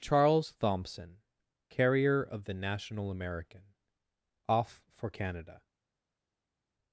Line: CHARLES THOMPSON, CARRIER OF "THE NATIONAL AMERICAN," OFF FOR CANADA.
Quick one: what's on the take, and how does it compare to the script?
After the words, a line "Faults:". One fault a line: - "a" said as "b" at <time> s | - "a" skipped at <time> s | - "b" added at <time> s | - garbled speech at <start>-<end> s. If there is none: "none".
CHARLES THOMPSON, CARRIER OF "THE NATIONAL AMERICAN," OFF FOR CANADA.
Faults:
none